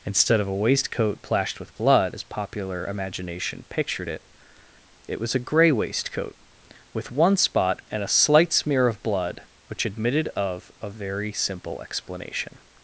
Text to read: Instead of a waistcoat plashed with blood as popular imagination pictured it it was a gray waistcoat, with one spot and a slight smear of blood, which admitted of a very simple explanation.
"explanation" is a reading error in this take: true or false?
false